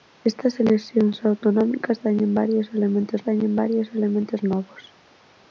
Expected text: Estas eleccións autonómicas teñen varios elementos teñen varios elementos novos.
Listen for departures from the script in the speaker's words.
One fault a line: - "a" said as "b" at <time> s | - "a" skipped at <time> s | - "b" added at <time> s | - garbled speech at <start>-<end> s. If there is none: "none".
none